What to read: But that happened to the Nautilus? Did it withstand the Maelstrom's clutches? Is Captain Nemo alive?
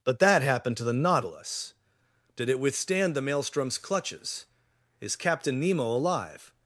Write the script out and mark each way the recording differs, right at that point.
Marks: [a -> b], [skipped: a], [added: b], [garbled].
But that happened to the Nautilus? Did it withstand the Maelstrom's clutches? Is Captain Nemo alive?